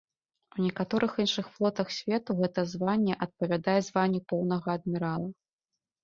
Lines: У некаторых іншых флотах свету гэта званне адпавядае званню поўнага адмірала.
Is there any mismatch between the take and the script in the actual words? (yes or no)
no